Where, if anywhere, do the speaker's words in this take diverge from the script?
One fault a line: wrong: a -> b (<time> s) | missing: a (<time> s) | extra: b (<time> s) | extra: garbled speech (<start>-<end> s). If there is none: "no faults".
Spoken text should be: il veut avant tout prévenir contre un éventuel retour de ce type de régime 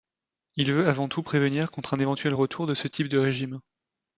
no faults